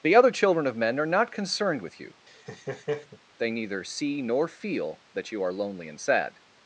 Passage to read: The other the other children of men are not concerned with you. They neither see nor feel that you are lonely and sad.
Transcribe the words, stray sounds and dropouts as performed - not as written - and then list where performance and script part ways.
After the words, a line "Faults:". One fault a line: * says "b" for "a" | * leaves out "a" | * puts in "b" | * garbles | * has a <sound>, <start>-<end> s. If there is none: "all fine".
The other children of men are not concerned with you. They neither see nor feel that you are lonely and sad.
Faults:
* leaves out "the other"
* has a laugh, 2.3-3.2 s